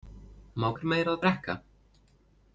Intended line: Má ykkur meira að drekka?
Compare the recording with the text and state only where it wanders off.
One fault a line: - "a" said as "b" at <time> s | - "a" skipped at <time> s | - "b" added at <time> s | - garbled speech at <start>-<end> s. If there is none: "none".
none